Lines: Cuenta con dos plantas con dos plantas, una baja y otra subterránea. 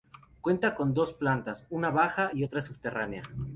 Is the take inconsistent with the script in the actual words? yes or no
yes